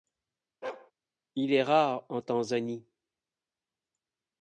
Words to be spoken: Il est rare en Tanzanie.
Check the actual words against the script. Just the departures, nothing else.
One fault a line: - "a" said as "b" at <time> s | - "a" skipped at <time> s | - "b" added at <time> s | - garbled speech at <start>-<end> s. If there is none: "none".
none